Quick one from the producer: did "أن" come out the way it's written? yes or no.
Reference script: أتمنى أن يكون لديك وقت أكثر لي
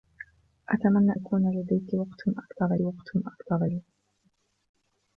no